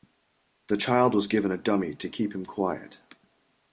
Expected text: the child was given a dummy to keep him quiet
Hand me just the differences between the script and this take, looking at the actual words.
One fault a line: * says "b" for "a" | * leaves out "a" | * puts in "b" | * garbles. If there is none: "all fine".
all fine